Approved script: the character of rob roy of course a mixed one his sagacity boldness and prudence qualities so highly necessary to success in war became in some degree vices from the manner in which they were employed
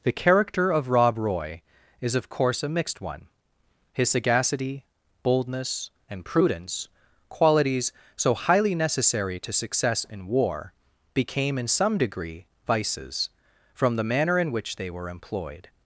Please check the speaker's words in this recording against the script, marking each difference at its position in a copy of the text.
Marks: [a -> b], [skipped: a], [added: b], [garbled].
the character of rob roy [added: is] of course a mixed one his sagacity boldness and prudence qualities so highly necessary to success in war became in some degree vices from the manner in which they were employed